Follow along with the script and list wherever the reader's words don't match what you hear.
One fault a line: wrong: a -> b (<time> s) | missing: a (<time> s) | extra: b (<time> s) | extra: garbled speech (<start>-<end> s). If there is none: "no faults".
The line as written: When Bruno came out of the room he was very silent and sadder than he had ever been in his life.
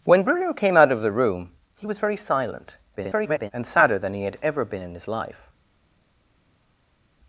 extra: garbled speech (3.0-3.5 s)